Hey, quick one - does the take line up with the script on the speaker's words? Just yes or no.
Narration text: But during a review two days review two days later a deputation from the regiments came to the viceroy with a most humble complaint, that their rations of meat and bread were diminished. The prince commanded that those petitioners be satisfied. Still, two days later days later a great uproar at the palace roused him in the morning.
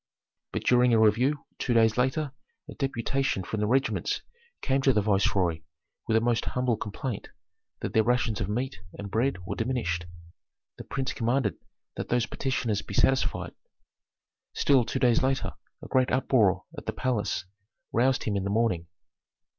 no